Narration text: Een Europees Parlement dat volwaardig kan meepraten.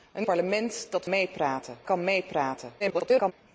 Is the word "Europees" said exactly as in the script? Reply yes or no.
no